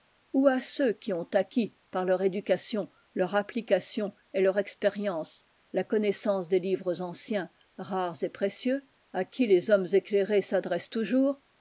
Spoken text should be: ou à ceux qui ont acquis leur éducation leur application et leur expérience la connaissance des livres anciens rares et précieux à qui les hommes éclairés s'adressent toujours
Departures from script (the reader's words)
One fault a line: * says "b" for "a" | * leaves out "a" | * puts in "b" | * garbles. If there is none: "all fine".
* puts in "par"